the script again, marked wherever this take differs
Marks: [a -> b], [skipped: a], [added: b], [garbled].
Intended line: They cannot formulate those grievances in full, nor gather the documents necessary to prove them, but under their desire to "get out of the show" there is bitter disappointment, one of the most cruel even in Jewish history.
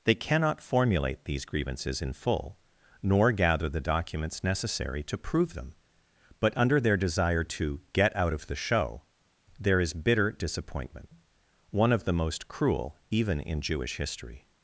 They cannot formulate [those -> these] grievances in full, nor gather the documents necessary to prove them, but under their desire to "get out of the show" there is bitter disappointment, one of the most cruel even in Jewish history.